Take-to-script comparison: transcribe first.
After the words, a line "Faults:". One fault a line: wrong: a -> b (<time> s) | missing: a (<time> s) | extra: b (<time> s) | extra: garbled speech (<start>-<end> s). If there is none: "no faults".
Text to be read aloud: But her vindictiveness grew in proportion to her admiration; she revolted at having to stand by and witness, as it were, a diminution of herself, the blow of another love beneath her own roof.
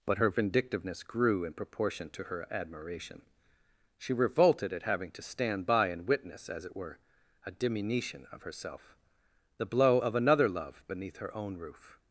But her vindictiveness grew in proportion to her admiration; she revolted at having to stand by and witness, as it were, a diminution of herself, the blow of another love beneath her own roof.
Faults:
no faults